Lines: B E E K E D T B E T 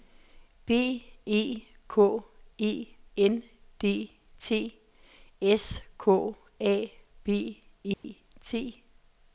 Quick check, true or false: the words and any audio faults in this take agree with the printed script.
false